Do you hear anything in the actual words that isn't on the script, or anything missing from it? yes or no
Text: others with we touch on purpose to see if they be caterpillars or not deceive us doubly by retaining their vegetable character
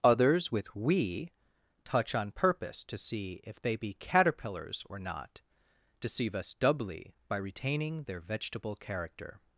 no